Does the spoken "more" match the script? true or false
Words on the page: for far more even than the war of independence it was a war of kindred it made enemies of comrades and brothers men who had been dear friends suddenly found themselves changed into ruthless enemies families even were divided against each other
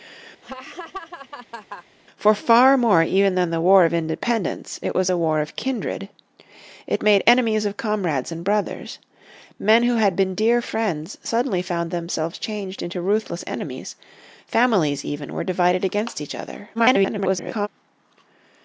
true